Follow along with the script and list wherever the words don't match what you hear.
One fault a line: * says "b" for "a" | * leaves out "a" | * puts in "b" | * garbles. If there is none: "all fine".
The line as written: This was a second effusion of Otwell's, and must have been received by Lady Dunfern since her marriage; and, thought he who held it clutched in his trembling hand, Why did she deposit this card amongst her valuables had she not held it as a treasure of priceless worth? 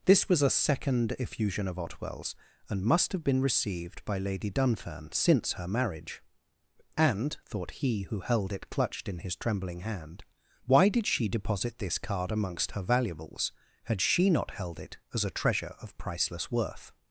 all fine